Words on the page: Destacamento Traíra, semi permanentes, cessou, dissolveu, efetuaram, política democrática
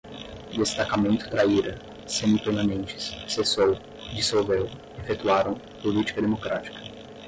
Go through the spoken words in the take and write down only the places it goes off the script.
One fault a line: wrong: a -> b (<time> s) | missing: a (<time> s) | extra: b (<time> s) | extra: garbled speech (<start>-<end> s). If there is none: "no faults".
no faults